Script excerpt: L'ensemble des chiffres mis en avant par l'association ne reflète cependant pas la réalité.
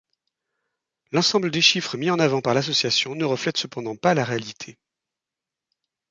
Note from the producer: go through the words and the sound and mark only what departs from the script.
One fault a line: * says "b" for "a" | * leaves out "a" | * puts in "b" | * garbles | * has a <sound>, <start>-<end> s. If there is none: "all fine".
all fine